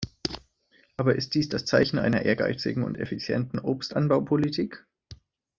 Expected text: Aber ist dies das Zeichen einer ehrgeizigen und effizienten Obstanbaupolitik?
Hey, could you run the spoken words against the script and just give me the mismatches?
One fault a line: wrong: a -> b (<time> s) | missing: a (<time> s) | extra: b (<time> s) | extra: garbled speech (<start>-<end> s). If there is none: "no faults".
no faults